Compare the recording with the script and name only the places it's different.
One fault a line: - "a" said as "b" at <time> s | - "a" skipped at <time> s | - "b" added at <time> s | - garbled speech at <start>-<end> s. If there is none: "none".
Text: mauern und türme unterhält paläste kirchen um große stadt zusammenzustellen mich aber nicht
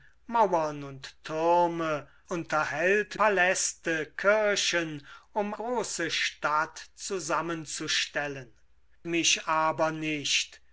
none